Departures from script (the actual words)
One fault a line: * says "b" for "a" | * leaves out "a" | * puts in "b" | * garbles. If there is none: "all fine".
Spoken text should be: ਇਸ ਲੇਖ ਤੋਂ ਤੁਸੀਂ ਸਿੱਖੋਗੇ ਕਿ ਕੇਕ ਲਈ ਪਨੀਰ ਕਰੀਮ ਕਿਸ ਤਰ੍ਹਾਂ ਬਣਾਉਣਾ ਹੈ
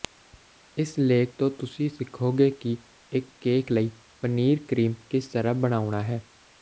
* puts in "ਇੱਕ"